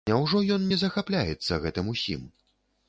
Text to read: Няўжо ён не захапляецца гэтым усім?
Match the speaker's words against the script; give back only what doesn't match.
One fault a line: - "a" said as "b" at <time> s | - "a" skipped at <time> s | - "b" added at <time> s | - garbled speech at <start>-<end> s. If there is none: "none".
none